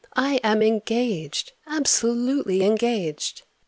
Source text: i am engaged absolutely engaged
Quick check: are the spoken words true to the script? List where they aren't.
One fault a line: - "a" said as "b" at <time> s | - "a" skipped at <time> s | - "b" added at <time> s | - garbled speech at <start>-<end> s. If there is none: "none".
none